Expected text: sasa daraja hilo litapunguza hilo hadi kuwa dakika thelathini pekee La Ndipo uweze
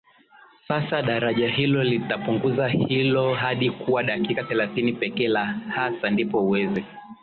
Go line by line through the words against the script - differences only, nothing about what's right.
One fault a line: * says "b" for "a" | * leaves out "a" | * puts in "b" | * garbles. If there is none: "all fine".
* puts in "hasa"